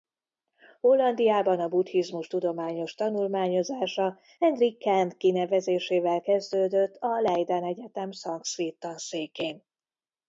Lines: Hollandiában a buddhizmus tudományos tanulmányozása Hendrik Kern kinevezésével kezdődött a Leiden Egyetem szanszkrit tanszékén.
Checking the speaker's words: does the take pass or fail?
pass